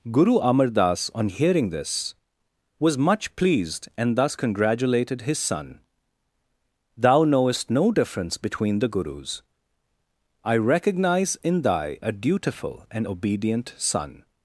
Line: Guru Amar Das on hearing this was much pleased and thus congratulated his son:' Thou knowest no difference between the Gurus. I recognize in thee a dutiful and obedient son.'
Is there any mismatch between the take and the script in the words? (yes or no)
yes